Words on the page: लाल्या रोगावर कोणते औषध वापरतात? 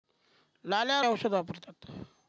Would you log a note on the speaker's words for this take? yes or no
yes